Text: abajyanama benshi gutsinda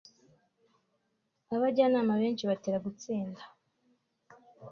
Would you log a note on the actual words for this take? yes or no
yes